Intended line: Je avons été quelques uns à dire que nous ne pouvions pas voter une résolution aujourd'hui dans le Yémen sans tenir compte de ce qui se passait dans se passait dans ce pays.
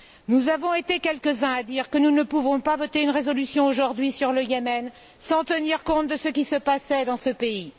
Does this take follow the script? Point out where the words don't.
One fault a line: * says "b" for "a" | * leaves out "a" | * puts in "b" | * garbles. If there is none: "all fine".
* says "Nous" for "Je"
* says "sur" for "dans"
* leaves out "se passait dans"